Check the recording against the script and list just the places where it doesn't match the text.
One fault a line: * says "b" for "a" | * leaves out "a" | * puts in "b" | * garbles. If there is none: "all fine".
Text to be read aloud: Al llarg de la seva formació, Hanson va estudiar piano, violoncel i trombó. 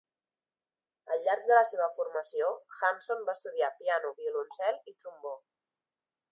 all fine